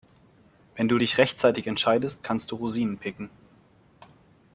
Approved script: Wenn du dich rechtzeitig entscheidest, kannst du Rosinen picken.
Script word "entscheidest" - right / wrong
right